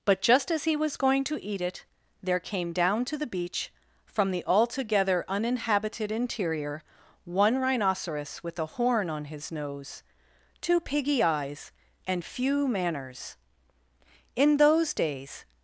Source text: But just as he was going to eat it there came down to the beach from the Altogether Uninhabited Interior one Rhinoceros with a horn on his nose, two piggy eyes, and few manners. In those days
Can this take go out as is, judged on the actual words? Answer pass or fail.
pass